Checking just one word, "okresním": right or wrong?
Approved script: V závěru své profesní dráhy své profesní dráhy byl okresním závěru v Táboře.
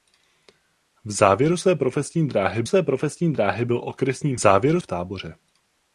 right